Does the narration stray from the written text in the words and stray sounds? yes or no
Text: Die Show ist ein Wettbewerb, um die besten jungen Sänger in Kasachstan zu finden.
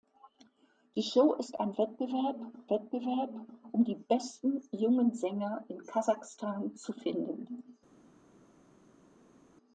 yes